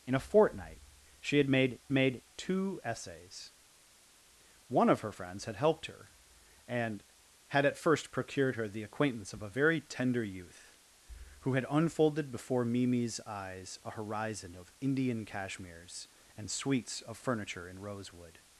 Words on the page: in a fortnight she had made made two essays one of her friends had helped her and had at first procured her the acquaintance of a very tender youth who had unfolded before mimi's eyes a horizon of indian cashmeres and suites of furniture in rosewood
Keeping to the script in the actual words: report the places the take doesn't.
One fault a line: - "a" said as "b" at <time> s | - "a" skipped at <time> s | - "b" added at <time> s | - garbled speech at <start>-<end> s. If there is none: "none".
none